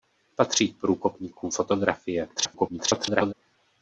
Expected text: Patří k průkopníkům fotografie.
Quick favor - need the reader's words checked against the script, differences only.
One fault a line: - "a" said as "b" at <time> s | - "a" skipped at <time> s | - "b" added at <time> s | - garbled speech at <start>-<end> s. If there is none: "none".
- garbled speech at 2.4-3.3 s